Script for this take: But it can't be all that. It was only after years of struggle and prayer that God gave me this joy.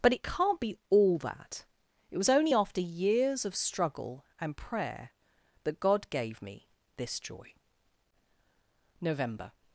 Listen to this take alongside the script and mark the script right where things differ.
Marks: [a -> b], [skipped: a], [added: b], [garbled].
But it can't be all that. It was only after years of struggle and prayer that God gave me this joy. [added: NOVEMBER]